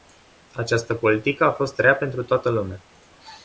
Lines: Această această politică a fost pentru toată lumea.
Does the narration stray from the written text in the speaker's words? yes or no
yes